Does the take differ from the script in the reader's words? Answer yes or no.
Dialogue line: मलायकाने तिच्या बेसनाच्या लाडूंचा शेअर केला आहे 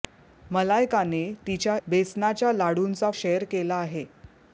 no